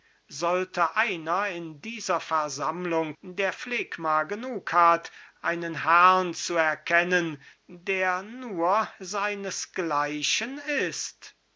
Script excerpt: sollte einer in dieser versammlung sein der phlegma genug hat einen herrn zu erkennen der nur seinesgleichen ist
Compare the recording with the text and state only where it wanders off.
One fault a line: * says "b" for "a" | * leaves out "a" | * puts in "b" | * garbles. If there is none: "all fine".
* leaves out "sein"